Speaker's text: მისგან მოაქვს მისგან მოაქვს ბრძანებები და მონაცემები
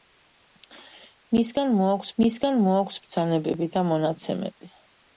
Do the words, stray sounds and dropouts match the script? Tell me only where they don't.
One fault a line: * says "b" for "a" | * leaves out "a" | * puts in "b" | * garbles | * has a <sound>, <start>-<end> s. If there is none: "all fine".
all fine